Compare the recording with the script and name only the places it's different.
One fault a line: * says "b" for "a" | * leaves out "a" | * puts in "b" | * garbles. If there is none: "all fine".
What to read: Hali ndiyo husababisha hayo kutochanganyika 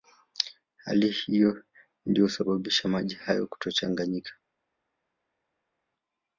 * puts in "hiyo"
* puts in "maji"